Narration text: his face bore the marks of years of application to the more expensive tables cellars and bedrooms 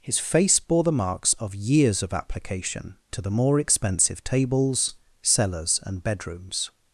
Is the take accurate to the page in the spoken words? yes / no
yes